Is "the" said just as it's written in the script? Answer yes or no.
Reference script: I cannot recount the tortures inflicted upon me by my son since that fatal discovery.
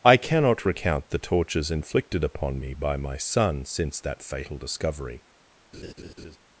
yes